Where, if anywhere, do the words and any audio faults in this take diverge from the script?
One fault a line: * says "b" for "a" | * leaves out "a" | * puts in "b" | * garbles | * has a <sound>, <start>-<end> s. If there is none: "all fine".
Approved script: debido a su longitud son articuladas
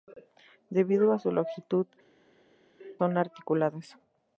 all fine